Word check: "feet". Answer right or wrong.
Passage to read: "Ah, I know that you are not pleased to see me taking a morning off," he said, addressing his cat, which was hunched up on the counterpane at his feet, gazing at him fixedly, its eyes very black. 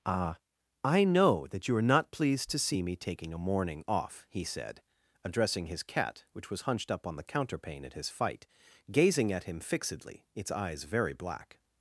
wrong